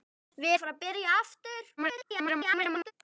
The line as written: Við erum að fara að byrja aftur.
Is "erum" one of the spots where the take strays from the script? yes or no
yes